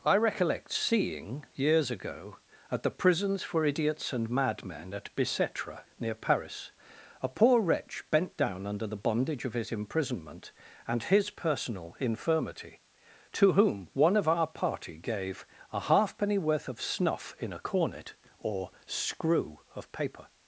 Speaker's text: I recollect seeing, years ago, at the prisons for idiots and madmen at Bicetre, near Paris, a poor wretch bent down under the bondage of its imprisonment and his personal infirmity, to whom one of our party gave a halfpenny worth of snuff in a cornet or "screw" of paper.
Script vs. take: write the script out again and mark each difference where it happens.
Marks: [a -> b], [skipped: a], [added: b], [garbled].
I recollect seeing, years ago, at the prisons for idiots and madmen at Bicetre, near Paris, a poor wretch bent down under the bondage of [its -> his] imprisonment and his personal infirmity, to whom one of our party gave a halfpenny worth of snuff in a cornet or "screw" of paper.